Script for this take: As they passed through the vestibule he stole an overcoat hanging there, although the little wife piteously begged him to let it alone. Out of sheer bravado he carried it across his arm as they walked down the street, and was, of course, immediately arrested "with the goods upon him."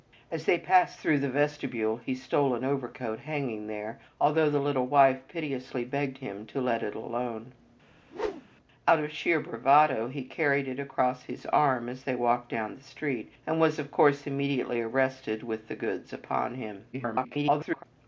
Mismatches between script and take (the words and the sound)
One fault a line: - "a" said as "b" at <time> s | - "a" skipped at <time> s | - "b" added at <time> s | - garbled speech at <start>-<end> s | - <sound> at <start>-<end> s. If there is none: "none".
- whoosh at 7.9-8.6 s
- garbled speech at 16.9-17.8 s